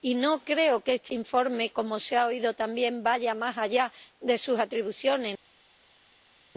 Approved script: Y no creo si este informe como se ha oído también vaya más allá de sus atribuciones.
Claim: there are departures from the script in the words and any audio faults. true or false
true